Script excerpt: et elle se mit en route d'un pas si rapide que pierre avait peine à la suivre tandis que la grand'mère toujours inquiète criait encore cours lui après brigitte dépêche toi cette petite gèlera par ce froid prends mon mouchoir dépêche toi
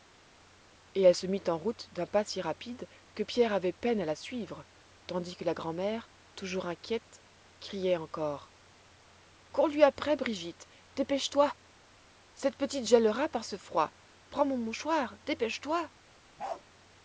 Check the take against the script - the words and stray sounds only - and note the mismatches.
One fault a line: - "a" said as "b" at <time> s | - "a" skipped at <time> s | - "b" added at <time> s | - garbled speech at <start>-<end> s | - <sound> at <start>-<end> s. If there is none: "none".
- bark at 16.4-16.6 s